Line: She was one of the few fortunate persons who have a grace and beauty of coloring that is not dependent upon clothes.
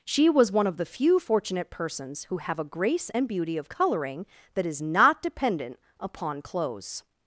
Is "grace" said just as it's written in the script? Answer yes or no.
yes